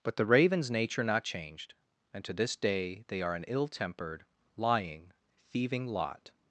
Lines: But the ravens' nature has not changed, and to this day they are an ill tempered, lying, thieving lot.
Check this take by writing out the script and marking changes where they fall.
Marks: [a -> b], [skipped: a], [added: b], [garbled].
But the ravens' nature [skipped: has] not changed, and to this day they are an ill tempered, lying, thieving lot.